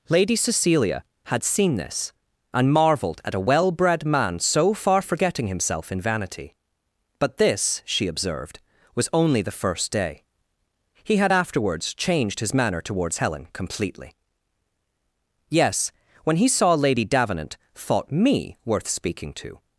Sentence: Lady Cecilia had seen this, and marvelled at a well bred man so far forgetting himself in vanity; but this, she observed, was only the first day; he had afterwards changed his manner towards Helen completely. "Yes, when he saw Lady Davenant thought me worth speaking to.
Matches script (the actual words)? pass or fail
pass